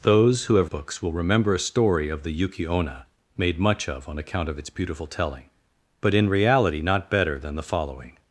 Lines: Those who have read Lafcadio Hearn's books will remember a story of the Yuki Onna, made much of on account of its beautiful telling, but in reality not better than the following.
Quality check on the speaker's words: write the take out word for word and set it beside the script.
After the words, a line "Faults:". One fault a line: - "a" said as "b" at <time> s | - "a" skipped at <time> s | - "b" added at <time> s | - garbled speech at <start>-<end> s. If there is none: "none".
Those who have books will remember a story of the Yuki Onna, made much of on account of its beautiful telling, but in reality not better than the following.
Faults:
- "read Lafcadio Hearn's" skipped at 0.7 s